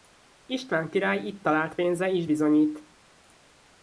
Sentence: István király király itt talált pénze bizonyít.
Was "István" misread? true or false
false